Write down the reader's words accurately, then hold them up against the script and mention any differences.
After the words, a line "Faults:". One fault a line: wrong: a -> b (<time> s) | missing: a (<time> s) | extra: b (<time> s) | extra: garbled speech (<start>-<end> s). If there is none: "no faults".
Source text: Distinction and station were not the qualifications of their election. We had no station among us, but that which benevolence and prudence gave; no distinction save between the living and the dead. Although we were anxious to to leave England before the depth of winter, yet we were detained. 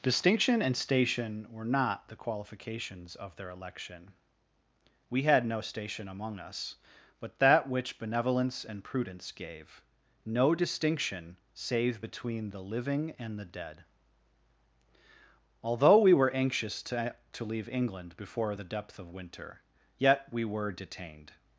Distinction and station were not the qualifications of their election. We had no station among us, but that which benevolence and prudence gave; no distinction save between the living and the dead. Although we were anxious to to leave England before the depth of winter, yet we were detained.
Faults:
no faults